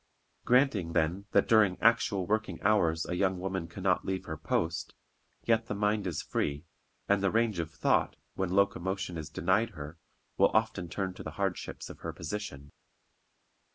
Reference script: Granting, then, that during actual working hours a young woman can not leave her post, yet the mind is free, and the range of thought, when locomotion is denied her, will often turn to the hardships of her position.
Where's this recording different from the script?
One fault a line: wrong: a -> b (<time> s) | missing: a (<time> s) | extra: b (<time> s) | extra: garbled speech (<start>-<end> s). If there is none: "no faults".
no faults